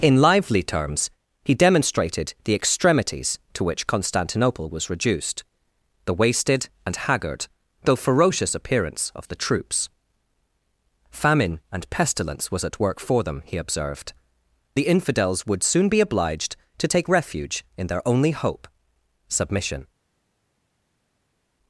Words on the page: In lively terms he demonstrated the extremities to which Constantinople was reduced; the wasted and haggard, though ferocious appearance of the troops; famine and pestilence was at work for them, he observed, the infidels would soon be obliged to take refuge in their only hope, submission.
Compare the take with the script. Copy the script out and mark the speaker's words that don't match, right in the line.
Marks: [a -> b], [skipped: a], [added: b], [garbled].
In lively terms he demonstrated the extremities to which Constantinople was reduced; the wasted and haggard, though ferocious appearance of the troops; famine and pestilence was at work for them, he observed, the infidels would soon be obliged to take refuge in their only hope, submission.